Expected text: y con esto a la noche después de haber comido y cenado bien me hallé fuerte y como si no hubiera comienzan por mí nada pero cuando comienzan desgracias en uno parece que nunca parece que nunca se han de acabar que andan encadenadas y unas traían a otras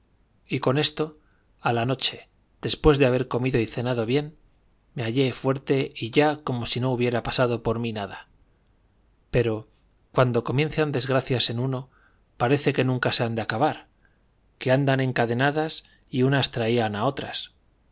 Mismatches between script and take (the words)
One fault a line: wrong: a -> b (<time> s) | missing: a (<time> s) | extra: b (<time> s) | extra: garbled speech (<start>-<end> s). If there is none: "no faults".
extra: ya (6.1 s)
wrong: comienzan -> pasado (7.2 s)
missing: parece que nunca (13.1 s)